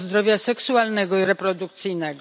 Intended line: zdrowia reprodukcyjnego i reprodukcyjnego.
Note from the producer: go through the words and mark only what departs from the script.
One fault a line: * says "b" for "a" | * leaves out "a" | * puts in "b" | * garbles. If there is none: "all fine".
* says "seksualnego" for "reprodukcyjnego"